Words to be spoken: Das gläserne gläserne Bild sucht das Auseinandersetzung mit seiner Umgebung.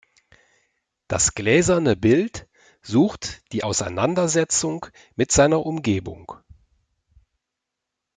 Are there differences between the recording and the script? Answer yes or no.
yes